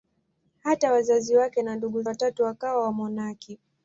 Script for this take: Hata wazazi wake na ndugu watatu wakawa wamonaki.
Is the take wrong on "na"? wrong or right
right